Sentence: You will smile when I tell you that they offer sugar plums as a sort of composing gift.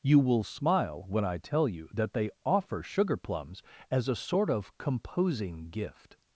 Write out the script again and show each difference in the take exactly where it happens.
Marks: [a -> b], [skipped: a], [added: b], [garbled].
You will smile when I tell you that they offer sugar plums as a sort of composing gift.